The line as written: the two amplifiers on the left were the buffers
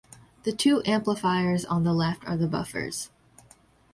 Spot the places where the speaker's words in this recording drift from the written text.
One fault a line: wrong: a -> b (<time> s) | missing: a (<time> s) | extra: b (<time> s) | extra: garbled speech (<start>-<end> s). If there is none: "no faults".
wrong: were -> are (2.2 s)